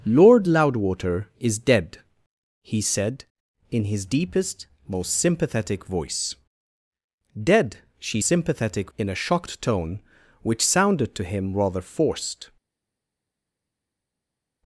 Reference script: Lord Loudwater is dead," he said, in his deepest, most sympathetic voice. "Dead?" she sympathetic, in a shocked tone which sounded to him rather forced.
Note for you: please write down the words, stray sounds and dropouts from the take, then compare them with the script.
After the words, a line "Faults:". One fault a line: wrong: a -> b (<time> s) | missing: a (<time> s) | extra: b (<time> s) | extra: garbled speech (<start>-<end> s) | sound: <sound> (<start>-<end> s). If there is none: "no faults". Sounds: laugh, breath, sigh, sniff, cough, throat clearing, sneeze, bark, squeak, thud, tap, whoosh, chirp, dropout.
Lord Loudwater is dead," he said, in his deepest, most sympathetic voice. "Dead?" she sympathetic, in a shocked tone which sounded to him rather forced.
Faults:
no faults